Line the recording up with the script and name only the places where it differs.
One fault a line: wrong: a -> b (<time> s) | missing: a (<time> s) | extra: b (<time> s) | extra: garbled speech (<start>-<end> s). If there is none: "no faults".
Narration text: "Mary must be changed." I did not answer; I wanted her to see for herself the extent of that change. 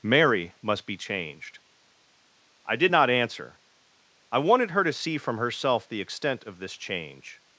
wrong: for -> from (5.2 s)
wrong: that -> this (6.6 s)